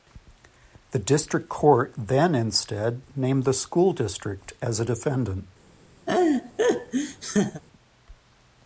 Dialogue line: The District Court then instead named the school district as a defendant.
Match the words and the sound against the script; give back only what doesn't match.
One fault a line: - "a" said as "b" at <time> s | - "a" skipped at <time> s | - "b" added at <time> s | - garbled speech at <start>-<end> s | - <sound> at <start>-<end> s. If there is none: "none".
- laugh at 6.1-7.6 s